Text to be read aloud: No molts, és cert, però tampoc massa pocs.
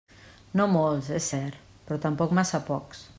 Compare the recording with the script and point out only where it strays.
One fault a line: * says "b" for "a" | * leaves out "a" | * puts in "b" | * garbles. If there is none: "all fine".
all fine